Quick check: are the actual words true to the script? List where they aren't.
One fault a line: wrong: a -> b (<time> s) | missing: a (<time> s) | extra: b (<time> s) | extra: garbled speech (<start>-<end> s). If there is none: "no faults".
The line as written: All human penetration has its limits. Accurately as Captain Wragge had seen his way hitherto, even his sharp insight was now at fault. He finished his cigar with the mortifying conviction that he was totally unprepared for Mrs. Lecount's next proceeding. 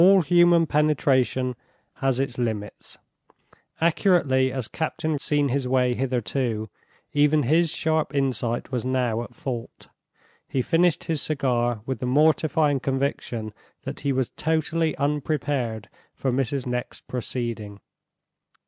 missing: Wragge had (5.2 s)
missing: Lecount's (16.7 s)